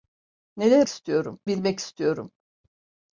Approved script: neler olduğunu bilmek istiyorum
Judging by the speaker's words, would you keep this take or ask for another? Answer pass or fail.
fail